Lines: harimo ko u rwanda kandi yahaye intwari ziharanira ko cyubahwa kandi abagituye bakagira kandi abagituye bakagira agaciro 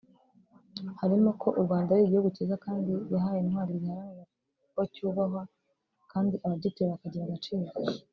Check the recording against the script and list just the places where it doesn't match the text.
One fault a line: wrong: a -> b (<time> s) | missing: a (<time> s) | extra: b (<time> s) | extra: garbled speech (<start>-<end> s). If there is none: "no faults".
extra: ari igihugu cyiza (1.9 s)
missing: kandi abagituye bakagira (7.2 s)